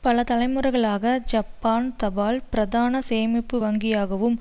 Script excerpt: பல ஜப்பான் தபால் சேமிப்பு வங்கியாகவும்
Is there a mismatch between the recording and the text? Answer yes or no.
yes